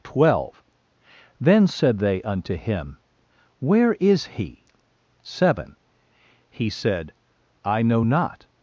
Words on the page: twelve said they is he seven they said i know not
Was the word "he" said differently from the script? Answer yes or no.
no